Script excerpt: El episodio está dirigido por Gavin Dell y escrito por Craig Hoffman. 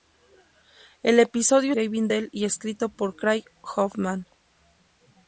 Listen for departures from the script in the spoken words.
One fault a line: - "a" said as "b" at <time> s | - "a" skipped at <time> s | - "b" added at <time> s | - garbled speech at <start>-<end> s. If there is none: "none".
- "está dirigido por" skipped at 1.7 s